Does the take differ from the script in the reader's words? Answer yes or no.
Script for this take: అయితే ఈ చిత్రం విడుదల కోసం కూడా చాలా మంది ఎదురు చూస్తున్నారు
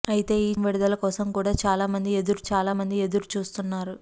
yes